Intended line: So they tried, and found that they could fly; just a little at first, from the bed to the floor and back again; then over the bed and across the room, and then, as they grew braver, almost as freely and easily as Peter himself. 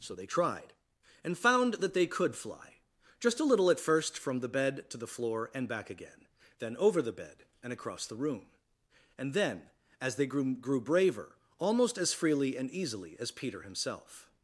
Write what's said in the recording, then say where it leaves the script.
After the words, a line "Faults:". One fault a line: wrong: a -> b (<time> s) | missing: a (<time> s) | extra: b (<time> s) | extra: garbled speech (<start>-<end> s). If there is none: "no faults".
So they tried, and found that they could fly; just a little at first, from the bed to the floor and back again; then over the bed and across the room, and then, as they grew grew braver, almost as freely and easily as Peter himself.
Faults:
extra: grew (10.5 s)